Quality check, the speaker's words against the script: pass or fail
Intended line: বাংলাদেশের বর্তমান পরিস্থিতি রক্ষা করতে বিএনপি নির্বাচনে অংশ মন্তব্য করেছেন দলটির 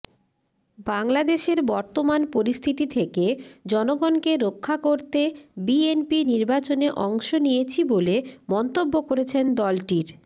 fail